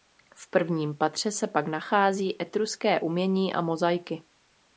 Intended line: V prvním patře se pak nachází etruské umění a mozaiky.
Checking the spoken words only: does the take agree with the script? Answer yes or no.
yes